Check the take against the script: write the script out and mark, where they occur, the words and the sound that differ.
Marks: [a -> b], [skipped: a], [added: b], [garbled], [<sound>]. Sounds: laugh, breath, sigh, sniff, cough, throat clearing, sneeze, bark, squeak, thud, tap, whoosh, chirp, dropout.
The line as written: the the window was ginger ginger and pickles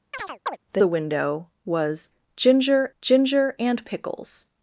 [chirp] the the window was ginger ginger and pickles